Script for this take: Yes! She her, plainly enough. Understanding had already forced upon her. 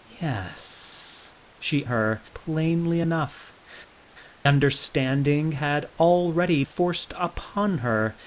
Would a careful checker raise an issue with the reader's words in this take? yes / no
no